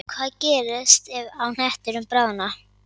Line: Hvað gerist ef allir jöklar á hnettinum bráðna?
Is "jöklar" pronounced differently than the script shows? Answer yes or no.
yes